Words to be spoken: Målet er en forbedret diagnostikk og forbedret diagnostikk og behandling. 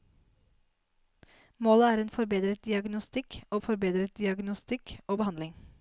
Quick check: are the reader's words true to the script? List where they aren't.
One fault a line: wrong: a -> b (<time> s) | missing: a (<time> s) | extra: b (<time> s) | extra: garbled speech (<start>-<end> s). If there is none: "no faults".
no faults